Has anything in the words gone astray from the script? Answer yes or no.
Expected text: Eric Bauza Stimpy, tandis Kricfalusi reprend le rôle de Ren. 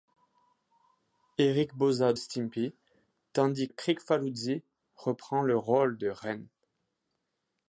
no